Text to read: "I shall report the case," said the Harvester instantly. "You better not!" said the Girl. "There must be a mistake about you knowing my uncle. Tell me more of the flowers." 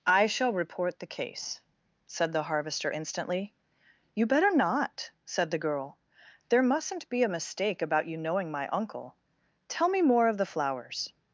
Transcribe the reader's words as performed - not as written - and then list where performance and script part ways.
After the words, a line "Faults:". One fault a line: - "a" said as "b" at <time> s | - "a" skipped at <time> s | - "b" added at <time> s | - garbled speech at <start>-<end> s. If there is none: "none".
"I shall report the case," said the Harvester instantly. "You better not!" said the Girl. "There mustn't be a mistake about you knowing my uncle. Tell me more of the flowers."
Faults:
- "must" said as "mustn't" at 6.6 s